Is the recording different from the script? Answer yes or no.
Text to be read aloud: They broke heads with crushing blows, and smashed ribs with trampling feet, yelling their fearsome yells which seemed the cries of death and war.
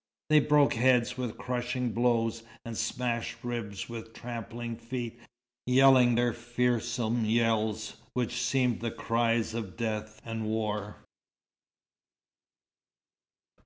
no